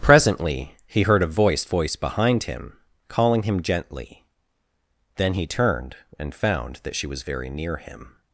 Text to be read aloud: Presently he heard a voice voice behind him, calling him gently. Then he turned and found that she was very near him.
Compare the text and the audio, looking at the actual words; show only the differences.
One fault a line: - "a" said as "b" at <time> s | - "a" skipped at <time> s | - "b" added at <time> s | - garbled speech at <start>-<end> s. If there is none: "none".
none